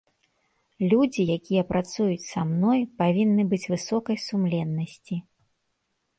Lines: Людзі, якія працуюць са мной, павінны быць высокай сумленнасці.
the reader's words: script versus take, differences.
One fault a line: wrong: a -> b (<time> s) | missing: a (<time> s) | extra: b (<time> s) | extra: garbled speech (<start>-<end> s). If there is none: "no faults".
no faults